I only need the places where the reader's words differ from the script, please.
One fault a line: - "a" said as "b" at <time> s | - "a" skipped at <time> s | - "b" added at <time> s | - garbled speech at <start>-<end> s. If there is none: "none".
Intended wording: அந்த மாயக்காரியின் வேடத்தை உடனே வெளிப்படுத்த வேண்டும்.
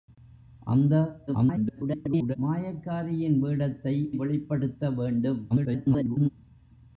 - garbled speech at 1.3-2.4 s
- "உடனே" skipped at 3.9 s
- garbled speech at 5.5-6.3 s